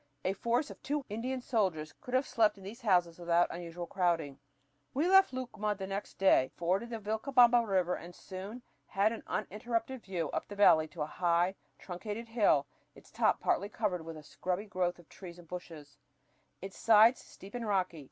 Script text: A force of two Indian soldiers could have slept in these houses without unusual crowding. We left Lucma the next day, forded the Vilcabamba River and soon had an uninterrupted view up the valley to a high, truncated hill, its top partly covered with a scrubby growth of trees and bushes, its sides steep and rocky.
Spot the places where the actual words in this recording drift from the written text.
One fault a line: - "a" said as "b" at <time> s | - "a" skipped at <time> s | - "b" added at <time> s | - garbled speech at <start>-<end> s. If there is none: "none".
none